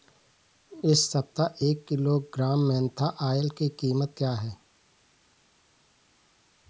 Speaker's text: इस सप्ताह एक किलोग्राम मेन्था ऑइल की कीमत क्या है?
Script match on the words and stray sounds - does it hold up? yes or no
yes